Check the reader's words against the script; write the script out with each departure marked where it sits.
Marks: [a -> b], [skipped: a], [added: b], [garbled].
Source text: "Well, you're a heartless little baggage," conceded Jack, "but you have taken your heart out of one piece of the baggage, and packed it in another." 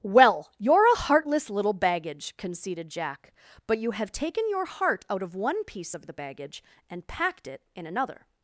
"Well, you're a heartless little baggage," conceded Jack, "but you have taken your heart out of one piece of the baggage, and packed it in another."